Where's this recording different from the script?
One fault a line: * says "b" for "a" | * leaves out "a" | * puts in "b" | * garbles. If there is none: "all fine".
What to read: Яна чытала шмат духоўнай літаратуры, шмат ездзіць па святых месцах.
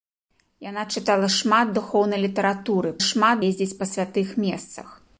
all fine